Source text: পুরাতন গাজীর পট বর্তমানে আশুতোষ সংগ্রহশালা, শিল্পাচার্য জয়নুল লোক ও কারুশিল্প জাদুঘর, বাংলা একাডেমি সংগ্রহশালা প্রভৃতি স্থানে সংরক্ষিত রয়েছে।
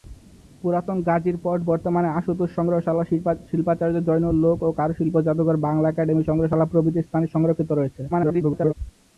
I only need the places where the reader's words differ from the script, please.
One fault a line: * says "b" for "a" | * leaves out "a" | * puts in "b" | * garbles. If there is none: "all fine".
* garbles